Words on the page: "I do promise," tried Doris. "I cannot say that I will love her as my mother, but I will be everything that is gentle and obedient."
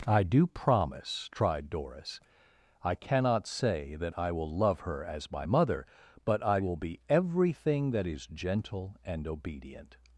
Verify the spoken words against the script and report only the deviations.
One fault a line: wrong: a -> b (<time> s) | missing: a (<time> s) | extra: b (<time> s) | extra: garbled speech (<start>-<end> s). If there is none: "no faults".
no faults